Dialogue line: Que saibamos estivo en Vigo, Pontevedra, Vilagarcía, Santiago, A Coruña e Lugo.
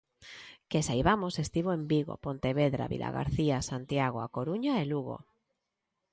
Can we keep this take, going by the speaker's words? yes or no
yes